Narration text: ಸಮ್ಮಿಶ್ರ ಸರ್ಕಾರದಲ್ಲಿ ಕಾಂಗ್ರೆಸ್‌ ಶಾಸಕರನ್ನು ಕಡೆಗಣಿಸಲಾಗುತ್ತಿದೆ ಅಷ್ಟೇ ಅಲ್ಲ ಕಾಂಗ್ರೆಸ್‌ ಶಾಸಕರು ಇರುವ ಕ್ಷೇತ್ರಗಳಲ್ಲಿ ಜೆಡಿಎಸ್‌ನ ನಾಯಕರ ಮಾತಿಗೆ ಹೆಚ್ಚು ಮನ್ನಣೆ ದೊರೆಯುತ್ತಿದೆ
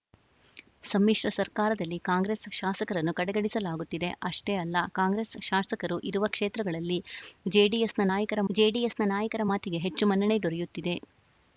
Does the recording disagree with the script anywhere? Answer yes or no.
yes